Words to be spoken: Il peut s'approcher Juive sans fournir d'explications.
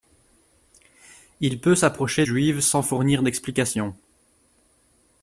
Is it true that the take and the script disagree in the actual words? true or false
false